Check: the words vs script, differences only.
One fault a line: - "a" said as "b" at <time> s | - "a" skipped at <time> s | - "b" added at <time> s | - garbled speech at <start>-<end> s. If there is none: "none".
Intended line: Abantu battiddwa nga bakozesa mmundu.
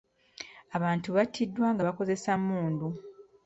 none